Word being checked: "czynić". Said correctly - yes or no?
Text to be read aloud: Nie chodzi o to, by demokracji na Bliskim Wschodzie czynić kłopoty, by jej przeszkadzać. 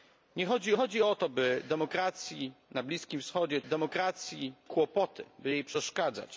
no